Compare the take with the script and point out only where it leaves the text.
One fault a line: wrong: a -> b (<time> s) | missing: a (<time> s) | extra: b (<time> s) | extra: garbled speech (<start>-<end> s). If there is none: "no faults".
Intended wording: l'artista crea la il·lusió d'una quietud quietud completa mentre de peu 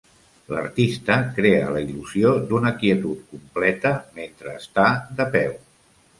missing: quietud (3.3 s)
extra: està (4.6 s)